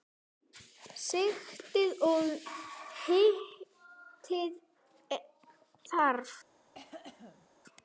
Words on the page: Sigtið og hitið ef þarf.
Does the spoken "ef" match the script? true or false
false